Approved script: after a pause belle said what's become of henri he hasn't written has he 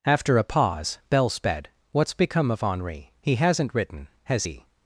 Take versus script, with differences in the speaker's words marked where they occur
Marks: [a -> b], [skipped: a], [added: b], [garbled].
after a pause belle [said -> sped] what's become of henri he hasn't written has he